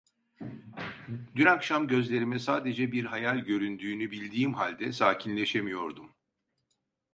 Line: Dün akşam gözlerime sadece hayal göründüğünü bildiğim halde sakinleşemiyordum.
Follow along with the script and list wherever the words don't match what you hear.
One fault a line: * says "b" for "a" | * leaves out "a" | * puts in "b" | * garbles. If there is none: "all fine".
* puts in "bir"